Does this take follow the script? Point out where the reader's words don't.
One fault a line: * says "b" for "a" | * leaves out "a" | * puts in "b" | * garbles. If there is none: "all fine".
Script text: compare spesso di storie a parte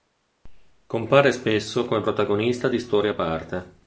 * puts in "come protagonista"